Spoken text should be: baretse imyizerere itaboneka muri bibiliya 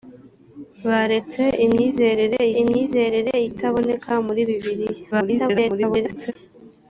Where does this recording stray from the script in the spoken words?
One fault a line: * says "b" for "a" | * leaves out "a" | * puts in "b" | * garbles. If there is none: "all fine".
* puts in "imyizerere"
* garbles